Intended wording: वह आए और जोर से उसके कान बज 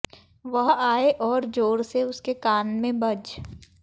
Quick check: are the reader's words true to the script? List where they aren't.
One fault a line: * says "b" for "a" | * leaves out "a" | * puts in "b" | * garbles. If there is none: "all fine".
* puts in "में"